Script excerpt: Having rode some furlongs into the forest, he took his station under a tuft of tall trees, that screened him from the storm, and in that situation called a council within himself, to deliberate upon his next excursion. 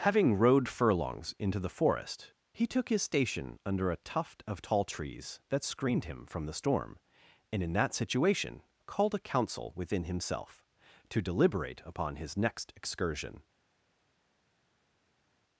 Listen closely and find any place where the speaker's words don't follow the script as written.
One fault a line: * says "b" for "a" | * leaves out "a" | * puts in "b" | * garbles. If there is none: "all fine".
* leaves out "some"